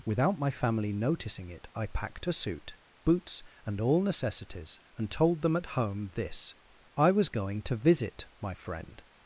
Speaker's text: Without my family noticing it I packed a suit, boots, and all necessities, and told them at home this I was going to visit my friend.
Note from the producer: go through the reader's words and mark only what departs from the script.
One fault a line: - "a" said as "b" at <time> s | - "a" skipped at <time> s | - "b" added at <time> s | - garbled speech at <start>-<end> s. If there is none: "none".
none